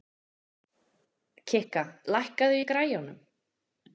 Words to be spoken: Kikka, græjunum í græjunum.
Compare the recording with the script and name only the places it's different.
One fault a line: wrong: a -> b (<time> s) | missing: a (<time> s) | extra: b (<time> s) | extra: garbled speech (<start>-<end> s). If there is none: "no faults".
wrong: græjunum -> lækkaðu (2.1 s)